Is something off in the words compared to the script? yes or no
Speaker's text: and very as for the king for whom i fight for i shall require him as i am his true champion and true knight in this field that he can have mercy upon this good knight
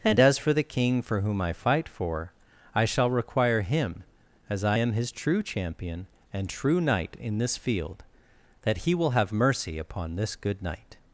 yes